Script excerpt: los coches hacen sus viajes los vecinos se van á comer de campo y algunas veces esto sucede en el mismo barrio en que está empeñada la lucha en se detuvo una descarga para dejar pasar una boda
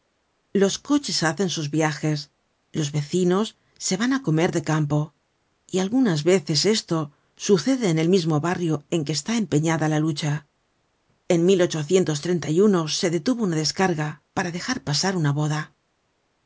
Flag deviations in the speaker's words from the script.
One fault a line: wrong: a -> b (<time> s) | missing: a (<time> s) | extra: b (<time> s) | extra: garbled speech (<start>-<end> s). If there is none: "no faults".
no faults